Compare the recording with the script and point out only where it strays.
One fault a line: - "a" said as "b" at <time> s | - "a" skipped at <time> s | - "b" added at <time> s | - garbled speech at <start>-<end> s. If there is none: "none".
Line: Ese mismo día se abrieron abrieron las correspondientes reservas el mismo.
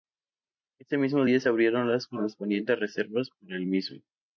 - "abrieron" skipped at 1.9 s
- "para" added at 3.4 s